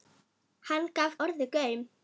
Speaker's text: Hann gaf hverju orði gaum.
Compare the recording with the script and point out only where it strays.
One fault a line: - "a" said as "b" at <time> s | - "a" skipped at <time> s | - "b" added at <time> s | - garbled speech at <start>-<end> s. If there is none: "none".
- "hverju" skipped at 1.2 s